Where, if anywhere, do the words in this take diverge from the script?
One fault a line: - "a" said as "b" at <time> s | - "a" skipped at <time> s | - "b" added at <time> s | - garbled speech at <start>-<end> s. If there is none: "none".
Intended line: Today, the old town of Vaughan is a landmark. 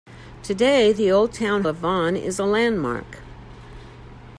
none